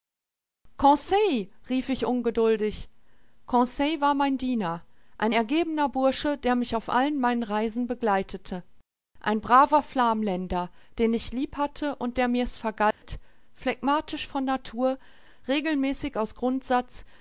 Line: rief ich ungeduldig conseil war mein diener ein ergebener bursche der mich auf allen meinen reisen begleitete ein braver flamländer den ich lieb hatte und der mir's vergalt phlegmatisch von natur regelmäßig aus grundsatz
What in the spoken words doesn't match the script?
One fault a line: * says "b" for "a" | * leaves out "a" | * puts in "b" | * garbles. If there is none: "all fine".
all fine